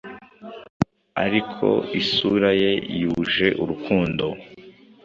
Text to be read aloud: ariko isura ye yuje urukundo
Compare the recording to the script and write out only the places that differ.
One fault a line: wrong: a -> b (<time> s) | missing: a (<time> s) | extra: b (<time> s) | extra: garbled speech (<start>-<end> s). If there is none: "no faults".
no faults